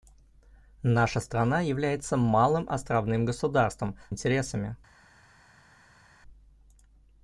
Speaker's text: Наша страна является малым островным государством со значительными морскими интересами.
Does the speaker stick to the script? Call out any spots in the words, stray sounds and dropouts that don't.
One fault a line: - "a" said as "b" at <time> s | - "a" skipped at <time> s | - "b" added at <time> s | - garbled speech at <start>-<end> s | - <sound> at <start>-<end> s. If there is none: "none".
- "со значительными морскими" skipped at 4.0 s